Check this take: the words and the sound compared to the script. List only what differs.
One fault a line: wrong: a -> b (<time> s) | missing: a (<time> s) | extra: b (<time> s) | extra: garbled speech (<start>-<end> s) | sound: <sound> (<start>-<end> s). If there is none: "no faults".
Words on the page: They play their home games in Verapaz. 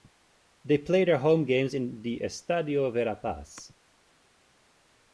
extra: the Estadio (2.0 s)